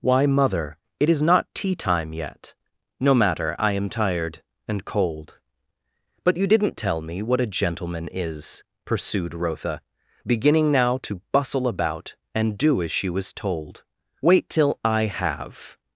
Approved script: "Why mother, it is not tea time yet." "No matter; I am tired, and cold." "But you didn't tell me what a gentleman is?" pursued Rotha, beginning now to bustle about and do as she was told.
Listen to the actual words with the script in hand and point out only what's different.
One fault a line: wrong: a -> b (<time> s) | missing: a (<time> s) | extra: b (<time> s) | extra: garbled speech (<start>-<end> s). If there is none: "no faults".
extra: Wait till I have (14.2 s)